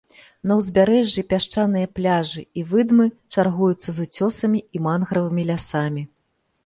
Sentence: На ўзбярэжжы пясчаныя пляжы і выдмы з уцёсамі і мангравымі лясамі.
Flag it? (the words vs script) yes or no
yes